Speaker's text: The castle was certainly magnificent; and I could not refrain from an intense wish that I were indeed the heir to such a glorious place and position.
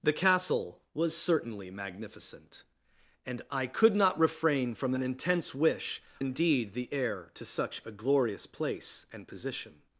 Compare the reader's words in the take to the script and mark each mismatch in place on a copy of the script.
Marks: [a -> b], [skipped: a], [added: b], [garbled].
The castle was certainly magnificent; and I could not refrain from an intense wish [skipped: that I were] indeed the heir to such a glorious place and position.